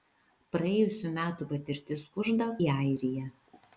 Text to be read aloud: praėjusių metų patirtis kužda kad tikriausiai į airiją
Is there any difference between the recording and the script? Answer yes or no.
yes